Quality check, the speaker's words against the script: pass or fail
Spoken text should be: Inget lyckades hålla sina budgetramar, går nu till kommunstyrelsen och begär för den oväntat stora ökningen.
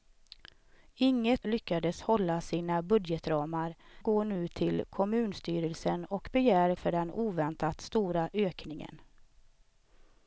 pass